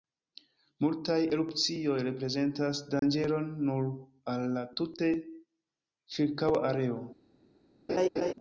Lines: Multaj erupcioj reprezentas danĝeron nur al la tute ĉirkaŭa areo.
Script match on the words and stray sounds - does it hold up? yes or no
no